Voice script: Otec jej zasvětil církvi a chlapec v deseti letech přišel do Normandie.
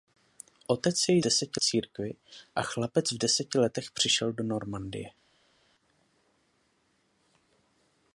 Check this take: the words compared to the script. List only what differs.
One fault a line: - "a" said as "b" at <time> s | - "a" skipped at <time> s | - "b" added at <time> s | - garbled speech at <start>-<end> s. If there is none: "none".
- "zasvětil" said as "deseti" at 1.2 s